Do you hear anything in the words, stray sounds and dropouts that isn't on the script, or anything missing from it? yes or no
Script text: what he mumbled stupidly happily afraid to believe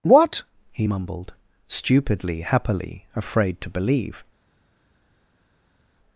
no